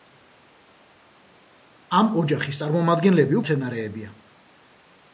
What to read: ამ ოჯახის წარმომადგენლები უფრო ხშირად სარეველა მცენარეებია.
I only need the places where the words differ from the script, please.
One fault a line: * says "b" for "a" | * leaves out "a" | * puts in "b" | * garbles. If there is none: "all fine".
* leaves out "უფრო ხშირად სარეველა"